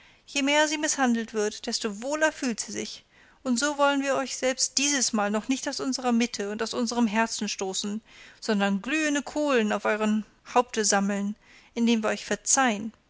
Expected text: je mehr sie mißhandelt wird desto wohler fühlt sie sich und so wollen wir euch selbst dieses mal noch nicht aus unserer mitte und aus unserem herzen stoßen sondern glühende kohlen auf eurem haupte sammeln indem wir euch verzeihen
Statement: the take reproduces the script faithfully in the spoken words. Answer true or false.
true